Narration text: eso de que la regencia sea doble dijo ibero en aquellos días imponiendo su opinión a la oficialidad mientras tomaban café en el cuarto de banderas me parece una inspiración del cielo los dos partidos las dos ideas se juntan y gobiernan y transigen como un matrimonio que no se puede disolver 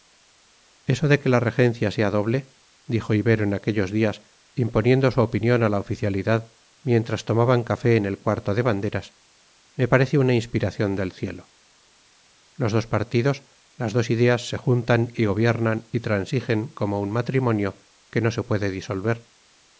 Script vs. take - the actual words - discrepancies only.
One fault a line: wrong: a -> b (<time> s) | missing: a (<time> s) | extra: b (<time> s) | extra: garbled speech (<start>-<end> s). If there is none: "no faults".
no faults